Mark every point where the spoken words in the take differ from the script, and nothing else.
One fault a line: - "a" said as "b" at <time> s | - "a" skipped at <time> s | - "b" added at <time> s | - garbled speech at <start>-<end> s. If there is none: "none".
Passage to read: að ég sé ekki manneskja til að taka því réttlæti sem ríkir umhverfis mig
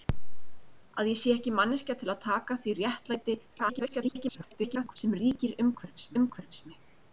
- garbled speech at 3.5-5.0 s
- "umhverfis" added at 6.2 s